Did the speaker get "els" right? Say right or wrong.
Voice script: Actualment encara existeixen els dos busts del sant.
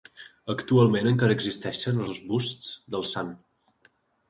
wrong